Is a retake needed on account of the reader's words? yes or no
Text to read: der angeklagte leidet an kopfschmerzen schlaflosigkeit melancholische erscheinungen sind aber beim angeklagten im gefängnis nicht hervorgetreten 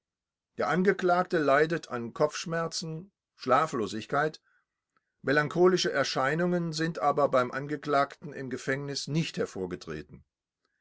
no